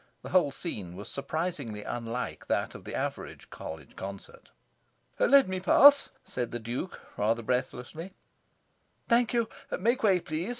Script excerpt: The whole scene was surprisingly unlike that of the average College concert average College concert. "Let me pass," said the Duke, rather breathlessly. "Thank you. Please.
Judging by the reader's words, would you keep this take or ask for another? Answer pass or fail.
fail